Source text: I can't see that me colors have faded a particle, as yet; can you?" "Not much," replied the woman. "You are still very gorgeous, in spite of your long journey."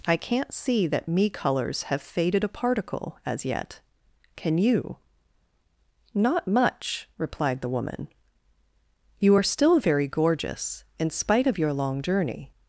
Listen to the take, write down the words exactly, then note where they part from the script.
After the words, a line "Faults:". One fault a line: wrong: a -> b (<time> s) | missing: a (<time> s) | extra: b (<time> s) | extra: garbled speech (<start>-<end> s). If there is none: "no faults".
I can't see that me colors have faded a particle, as yet; can you?" "Not much," replied the woman. "You are still very gorgeous, in spite of your long journey."
Faults:
no faults